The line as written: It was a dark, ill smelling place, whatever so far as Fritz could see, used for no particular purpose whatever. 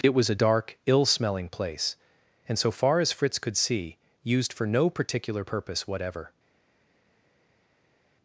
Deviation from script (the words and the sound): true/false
true